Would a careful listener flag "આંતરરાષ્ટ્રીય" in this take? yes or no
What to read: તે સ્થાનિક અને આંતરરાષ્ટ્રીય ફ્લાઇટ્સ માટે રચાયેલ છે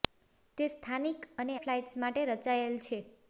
yes